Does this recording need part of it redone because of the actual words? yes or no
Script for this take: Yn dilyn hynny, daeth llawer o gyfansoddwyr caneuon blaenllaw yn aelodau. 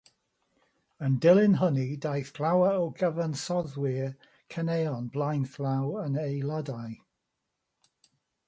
no